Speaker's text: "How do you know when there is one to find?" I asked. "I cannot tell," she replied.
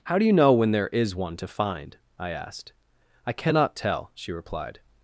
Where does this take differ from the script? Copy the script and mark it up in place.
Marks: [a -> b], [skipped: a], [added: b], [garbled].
"How do you know when there is one to find?" I asked. "I cannot tell," she replied.